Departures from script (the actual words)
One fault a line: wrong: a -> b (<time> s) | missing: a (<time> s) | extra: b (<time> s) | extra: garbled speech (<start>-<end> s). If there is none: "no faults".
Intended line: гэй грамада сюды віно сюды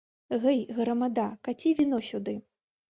wrong: сюды -> каці (1.5 s)